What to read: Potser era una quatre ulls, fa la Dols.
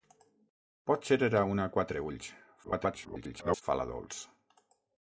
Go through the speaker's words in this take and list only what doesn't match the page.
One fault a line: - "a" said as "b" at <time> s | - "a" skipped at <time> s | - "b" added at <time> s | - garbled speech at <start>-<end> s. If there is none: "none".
- garbled speech at 2.6-3.6 s